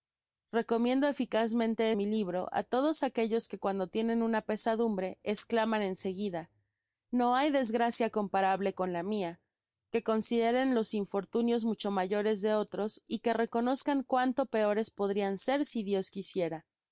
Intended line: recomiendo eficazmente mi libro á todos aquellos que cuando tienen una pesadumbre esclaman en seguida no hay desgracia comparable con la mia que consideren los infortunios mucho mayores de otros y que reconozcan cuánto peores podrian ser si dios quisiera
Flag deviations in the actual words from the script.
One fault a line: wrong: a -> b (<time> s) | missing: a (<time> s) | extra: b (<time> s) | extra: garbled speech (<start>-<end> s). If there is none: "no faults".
no faults